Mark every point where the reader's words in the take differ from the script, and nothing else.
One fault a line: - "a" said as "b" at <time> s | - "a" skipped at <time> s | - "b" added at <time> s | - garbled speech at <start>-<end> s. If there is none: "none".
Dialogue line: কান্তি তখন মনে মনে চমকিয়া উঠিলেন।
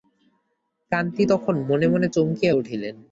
none